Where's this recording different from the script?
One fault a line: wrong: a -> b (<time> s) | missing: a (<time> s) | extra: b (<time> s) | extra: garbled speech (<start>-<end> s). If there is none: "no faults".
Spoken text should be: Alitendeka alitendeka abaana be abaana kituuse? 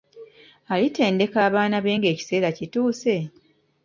missing: alitendeka (1.4 s)
wrong: abaana -> ng'ekiseera (2.0 s)